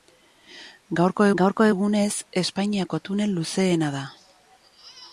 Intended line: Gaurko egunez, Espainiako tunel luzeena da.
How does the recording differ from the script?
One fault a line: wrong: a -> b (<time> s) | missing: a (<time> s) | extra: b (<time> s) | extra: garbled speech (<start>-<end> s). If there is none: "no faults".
extra: gaurko (1.4 s)